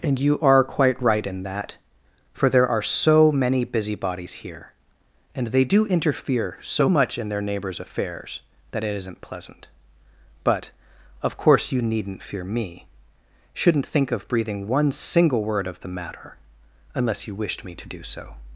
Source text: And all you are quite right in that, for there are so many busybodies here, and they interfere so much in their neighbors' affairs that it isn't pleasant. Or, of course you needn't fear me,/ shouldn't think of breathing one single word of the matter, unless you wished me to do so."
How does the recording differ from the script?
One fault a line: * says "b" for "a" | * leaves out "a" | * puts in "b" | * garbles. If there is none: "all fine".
* leaves out "all"
* puts in "do"
* says "But" for "Or"